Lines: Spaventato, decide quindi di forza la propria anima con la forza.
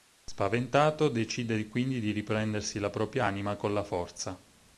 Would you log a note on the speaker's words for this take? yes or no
yes